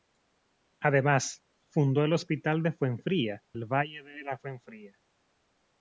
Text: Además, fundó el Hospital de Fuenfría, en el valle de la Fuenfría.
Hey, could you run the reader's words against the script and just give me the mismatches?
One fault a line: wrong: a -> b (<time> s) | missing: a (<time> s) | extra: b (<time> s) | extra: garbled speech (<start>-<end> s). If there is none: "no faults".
missing: en (3.4 s)